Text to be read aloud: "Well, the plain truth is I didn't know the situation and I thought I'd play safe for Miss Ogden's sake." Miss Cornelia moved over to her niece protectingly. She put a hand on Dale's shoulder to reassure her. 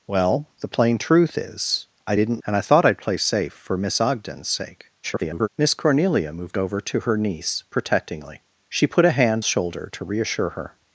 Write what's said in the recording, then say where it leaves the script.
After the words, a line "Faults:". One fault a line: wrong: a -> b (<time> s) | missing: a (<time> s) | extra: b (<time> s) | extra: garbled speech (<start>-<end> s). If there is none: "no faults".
"Well, the plain truth is I didn't and I thought I'd play safe for Miss Ogden's sake." [garbled] Miss Cornelia moved over to her niece protectingly. She put a hand shoulder to reassure her.
Faults:
missing: know the situation (2.4 s)
extra: garbled speech (5.0-5.5 s)
missing: on Dale's (9.4 s)